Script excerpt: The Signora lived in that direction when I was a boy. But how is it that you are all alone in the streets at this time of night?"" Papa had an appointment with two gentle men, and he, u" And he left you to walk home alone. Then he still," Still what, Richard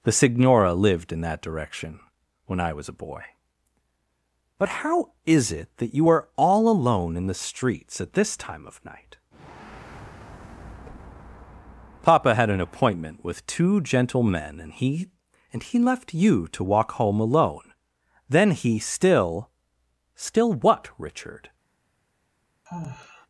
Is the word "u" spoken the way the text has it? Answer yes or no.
no